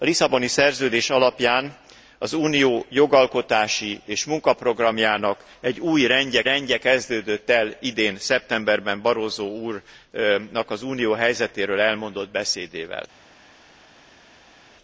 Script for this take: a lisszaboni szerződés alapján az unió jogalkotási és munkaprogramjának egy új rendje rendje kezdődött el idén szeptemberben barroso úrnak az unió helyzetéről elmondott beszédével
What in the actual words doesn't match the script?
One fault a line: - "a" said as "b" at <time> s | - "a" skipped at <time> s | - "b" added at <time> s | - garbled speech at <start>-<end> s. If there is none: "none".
none